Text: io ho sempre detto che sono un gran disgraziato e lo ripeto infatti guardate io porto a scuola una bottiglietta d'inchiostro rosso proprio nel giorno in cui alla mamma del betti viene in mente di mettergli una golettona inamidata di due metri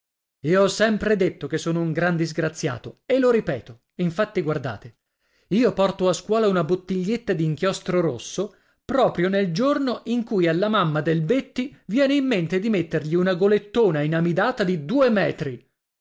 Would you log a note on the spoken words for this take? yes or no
no